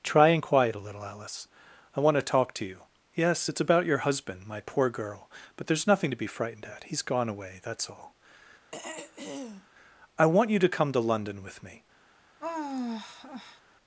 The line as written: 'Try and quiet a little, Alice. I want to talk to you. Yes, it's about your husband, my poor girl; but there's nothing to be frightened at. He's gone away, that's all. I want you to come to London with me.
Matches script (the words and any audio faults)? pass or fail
fail